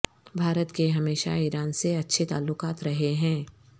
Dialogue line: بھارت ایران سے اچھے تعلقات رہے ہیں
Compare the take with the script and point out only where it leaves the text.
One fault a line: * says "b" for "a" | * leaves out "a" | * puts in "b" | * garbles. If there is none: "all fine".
* puts in "کے ہمیشہ"